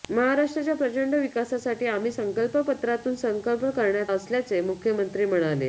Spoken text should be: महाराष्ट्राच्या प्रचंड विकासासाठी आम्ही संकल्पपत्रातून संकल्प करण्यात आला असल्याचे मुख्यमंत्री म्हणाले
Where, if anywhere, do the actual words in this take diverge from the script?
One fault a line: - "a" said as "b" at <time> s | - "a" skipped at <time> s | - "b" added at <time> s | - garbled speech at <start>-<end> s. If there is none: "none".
- "आला" skipped at 4.1 s